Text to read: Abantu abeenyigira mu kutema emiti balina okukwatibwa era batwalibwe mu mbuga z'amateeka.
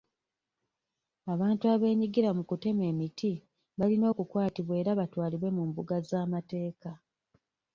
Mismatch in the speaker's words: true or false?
false